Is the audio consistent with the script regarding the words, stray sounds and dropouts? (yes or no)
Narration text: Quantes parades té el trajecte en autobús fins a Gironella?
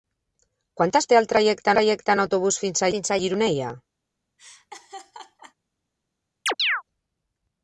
no